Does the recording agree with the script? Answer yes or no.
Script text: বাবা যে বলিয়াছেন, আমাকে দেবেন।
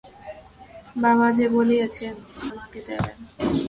yes